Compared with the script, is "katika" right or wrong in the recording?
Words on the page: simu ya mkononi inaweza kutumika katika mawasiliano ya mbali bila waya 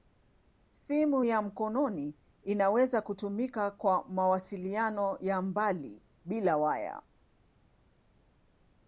wrong